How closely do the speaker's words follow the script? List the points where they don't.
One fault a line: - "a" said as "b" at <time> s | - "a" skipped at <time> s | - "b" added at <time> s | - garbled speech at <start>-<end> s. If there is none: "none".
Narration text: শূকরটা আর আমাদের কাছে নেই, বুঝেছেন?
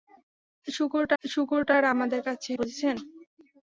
- "শূকরটা" added at 1.2 s
- "নেই" skipped at 2.5 s